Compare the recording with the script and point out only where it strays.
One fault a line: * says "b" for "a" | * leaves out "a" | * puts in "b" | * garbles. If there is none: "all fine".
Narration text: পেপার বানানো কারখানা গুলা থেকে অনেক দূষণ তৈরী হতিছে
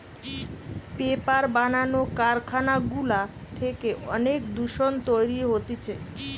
all fine